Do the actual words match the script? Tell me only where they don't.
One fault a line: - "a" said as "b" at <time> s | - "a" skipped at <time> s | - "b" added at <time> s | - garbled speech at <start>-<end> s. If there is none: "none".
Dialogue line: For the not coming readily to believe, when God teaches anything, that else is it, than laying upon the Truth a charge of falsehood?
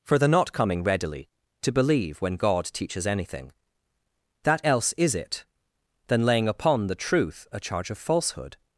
none